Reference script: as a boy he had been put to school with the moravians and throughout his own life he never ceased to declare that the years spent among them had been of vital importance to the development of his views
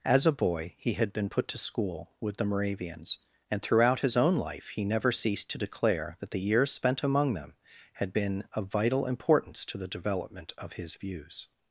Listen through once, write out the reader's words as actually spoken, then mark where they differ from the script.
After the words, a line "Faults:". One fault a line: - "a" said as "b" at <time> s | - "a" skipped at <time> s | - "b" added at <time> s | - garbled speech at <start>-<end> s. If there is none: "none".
as a boy he had been put to school with the moravians and throughout his own life he never ceased to declare that the years spent among them had been of vital importance to the development of his views
Faults:
none